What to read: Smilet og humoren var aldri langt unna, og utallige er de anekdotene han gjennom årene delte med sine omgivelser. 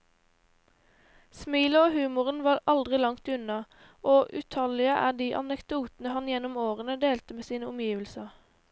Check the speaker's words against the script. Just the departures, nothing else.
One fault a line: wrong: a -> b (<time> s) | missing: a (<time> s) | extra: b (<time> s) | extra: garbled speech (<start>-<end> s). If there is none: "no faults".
no faults